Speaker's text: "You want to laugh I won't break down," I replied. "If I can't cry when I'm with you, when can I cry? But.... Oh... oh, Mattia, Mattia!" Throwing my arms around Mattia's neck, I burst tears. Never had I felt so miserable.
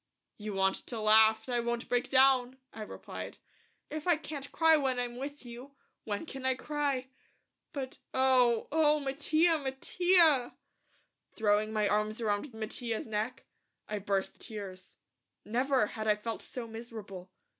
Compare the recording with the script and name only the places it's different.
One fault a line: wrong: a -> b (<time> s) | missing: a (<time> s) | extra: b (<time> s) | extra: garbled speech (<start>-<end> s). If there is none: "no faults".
no faults